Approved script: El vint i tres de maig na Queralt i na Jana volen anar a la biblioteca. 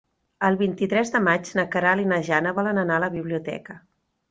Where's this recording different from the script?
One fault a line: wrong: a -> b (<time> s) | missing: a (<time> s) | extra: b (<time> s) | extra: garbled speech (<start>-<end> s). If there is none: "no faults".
no faults